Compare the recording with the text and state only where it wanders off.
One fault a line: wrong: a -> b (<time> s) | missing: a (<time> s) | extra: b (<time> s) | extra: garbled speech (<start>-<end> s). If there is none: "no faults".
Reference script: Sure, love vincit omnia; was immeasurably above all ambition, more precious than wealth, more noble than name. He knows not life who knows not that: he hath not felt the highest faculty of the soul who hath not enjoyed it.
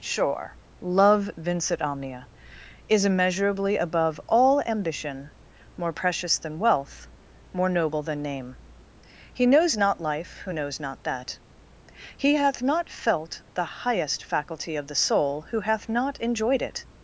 wrong: was -> is (2.9 s)